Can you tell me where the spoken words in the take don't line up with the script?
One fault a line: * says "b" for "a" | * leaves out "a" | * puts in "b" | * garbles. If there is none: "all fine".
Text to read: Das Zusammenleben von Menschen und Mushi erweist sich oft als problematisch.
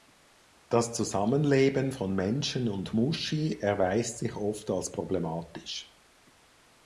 all fine